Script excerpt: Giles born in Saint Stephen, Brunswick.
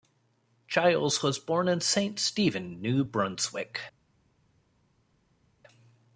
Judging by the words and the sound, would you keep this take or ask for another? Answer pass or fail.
fail